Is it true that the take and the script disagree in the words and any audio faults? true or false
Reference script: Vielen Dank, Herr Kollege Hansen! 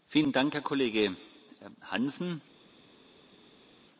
false